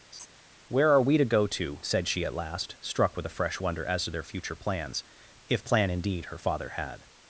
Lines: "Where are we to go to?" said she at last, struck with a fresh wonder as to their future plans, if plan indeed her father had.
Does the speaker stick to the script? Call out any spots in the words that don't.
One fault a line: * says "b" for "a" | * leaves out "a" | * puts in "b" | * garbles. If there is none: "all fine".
all fine